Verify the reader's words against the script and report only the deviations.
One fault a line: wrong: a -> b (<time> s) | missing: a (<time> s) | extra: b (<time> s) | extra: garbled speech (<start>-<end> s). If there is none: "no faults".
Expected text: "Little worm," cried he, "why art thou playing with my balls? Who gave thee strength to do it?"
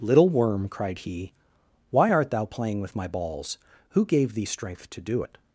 no faults